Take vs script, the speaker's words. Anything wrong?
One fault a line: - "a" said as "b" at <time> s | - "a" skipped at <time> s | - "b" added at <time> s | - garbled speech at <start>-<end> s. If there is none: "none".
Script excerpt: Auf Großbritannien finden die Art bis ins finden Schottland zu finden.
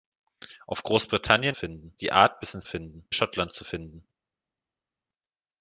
none